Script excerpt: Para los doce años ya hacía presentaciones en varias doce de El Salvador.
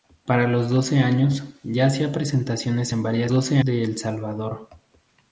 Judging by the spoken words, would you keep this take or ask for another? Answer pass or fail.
pass